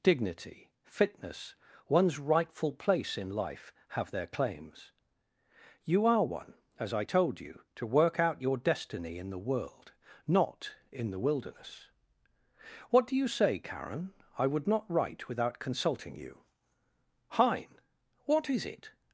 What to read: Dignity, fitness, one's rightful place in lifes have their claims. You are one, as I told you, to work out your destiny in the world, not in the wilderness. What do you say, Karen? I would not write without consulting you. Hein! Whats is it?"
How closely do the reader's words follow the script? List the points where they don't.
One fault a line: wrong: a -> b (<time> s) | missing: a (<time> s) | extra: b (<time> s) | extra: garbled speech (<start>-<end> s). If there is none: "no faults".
wrong: lifes -> life (3.3 s)
wrong: Whats -> What (18.2 s)